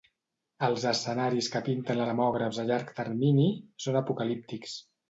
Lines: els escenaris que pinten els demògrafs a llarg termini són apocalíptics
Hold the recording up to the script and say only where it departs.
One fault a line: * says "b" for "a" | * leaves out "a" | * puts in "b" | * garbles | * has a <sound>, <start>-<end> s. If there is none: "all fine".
* leaves out "els"